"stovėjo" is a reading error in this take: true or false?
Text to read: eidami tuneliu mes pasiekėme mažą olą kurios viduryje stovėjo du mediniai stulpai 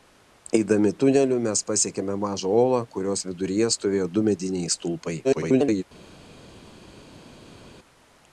false